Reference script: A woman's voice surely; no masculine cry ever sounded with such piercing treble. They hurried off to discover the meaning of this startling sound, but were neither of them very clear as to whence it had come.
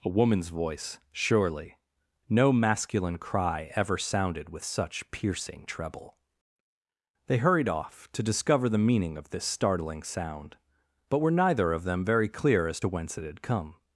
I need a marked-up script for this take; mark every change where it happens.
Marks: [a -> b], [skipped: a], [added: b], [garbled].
A woman's voice surely; no masculine cry ever sounded with such piercing treble. They hurried off to discover the meaning of this startling sound, but were neither of them very clear as to whence it had come.